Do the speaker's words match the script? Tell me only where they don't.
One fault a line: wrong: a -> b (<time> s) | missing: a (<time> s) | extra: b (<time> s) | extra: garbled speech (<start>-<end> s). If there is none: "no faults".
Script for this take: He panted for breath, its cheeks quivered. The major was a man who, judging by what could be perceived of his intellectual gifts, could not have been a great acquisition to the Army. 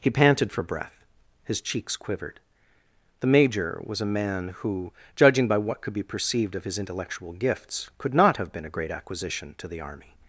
wrong: its -> his (1.4 s)